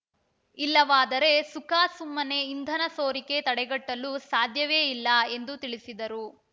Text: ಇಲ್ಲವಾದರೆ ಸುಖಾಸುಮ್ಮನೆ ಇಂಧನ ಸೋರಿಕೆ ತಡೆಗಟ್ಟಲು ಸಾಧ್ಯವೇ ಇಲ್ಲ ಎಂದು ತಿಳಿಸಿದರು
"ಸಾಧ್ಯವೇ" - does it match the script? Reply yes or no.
yes